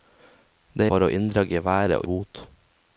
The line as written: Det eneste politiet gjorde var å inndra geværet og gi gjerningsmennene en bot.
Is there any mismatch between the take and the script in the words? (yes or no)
yes